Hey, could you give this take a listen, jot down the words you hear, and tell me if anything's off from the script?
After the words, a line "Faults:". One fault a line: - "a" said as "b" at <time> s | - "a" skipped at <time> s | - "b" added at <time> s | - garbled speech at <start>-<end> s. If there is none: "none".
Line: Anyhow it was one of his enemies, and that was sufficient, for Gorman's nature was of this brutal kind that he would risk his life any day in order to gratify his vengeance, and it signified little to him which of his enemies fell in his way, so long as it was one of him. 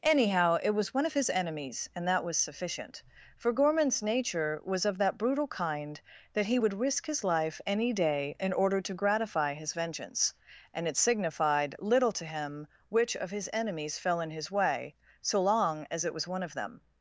Anyhow it was one of his enemies, and that was sufficient, for Gorman's nature was of that brutal kind that he would risk his life any day in order to gratify his vengeance, and it signified little to him which of his enemies fell in his way, so long as it was one of them.
Faults:
- "this" said as "that" at 5.0 s
- "him" said as "them" at 16.5 s